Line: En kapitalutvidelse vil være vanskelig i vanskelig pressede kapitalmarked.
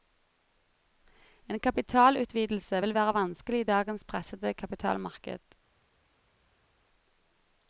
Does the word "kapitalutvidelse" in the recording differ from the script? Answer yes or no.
no